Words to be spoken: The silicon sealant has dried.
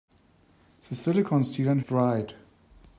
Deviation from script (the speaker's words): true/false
true